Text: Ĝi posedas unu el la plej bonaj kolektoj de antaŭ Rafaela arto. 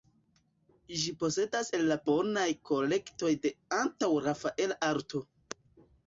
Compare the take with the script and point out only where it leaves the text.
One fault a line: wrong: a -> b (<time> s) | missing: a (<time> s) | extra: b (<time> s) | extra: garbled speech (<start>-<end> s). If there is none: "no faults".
missing: unu (1.7 s)
missing: plej (2.0 s)